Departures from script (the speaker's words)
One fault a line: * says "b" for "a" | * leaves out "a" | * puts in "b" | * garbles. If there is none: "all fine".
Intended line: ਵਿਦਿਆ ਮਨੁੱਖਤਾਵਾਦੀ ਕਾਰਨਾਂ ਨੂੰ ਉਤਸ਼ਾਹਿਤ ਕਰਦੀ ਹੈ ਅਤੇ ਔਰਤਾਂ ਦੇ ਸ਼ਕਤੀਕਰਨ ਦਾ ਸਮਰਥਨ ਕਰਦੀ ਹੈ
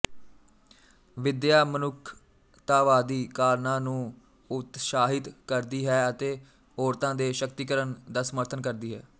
all fine